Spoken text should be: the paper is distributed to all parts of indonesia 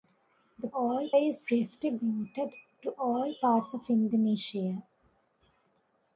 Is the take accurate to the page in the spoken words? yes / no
no